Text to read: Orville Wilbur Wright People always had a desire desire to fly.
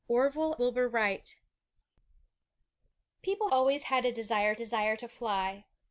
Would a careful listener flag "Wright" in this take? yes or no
no